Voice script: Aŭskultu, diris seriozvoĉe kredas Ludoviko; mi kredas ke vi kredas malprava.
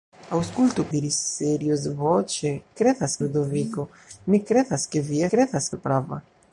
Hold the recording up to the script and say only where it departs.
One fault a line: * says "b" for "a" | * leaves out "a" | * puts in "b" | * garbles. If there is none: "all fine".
all fine